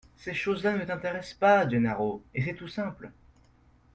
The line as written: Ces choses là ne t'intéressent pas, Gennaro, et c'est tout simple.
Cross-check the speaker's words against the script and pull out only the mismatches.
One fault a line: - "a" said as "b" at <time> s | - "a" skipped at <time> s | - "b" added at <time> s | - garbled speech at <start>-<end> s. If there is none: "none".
none